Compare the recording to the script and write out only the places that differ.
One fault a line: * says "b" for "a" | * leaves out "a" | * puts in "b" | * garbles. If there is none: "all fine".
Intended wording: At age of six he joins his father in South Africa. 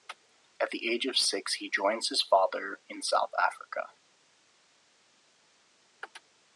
* puts in "the"